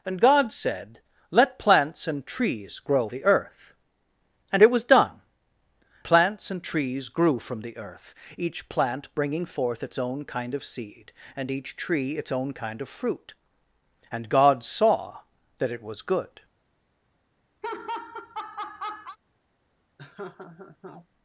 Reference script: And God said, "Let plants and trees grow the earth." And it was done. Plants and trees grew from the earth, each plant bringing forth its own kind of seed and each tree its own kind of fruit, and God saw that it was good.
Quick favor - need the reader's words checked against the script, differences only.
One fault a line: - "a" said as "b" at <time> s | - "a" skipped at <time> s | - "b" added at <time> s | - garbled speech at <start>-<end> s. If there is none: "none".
none